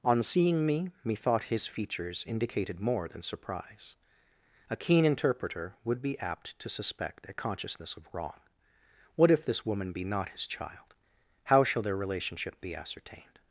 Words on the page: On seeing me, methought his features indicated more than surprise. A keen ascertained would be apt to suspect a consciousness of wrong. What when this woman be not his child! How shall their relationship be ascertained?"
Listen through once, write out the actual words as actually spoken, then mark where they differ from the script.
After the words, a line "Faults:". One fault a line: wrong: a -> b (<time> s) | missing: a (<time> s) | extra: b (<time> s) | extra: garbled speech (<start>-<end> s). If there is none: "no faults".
On seeing me, methought his features indicated more than surprise. A keen interpreter would be apt to suspect a consciousness of wrong. What if this woman be not his child! How shall their relationship be ascertained?"
Faults:
wrong: ascertained -> interpreter (5.0 s)
wrong: when -> if (9.3 s)